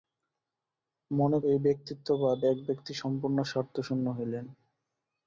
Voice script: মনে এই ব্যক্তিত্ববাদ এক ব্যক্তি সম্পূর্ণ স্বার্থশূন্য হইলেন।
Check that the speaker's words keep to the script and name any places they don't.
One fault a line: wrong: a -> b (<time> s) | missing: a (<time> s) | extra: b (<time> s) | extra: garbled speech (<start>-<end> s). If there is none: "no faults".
no faults